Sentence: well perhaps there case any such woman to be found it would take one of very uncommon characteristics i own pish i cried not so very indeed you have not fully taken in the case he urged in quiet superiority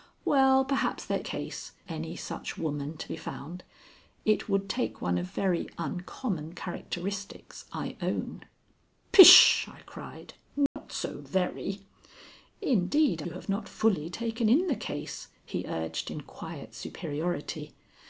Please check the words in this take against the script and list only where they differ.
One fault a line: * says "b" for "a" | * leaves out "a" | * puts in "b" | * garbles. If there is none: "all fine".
all fine